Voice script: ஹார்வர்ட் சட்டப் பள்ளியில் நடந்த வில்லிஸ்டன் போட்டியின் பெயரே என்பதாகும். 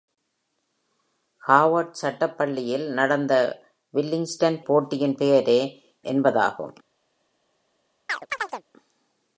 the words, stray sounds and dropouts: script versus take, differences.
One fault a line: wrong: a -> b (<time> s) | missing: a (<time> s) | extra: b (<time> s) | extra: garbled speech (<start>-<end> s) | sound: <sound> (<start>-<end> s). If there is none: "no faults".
sound: chirp (8.1-8.6 s)